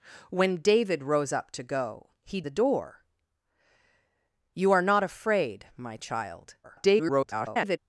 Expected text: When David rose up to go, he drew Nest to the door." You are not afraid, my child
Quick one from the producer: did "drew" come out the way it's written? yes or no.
no